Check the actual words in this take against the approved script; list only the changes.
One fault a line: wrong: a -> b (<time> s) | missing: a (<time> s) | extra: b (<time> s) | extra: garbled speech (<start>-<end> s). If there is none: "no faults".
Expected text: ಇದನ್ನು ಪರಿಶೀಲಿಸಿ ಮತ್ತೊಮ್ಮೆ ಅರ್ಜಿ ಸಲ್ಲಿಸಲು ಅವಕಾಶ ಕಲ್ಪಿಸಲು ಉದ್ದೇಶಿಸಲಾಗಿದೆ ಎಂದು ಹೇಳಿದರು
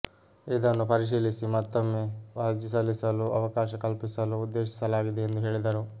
no faults